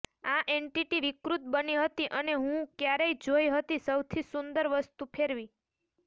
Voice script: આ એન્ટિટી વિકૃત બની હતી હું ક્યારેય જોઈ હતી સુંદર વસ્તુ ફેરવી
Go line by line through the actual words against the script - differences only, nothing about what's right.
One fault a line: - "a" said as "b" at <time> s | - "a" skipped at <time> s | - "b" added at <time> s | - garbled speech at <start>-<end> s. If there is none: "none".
- "અને" added at 2.2 s
- "સૌથી" added at 3.9 s